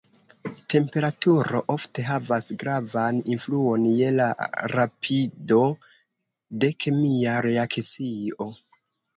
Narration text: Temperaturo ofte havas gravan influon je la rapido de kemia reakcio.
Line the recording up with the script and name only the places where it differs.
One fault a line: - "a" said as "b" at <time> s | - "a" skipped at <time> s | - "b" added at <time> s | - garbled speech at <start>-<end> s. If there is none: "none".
none